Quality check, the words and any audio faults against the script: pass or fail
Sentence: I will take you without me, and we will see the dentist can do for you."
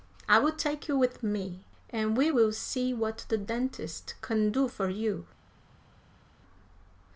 fail